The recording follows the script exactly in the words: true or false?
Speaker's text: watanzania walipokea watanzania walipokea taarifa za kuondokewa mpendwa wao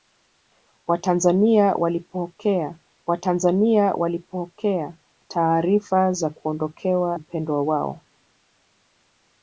true